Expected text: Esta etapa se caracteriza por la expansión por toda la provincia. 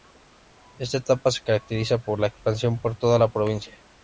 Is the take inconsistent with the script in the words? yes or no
no